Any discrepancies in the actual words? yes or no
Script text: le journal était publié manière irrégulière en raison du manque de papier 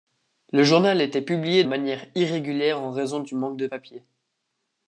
no